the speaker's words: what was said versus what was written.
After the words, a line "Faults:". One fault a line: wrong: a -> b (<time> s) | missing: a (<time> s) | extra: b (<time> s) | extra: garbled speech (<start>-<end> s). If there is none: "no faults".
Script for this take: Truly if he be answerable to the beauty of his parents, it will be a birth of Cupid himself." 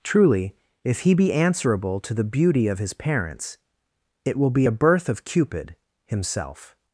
Truly if he be answerable to the beauty of his parents, it will be a birth of Cupid himself."
Faults:
no faults